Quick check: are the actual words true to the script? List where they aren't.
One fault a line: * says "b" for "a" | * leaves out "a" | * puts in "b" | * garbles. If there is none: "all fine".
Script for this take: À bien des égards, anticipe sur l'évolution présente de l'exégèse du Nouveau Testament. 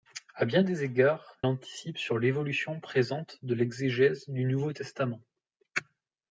all fine